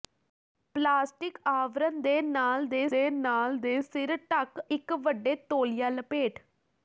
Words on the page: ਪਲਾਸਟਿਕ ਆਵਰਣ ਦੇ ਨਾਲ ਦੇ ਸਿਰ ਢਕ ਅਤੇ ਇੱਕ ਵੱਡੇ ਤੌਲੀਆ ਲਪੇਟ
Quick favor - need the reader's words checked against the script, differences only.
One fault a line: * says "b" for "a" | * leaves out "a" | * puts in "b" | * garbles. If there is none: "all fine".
* puts in "ਦੇ ਨਾਲ ਦੇ"
* leaves out "ਅਤੇ"